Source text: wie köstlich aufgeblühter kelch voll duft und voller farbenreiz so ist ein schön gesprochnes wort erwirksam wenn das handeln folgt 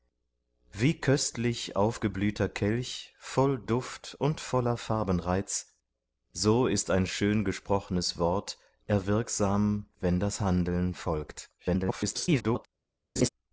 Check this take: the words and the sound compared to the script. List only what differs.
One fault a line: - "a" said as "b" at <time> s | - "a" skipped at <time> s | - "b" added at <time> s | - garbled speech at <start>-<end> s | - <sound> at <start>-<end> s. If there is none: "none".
- garbled speech at 11.6-12.7 s
- laugh at 13.2-13.3 s